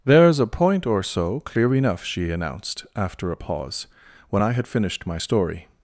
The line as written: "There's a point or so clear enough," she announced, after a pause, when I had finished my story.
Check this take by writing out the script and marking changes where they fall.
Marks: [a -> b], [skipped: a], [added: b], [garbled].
"There's a point or so clear enough," she announced, after a pause, when I had finished my story.